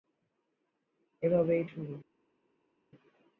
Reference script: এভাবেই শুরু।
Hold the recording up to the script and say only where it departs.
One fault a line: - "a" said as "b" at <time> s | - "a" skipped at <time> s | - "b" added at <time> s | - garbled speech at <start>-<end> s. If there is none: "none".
none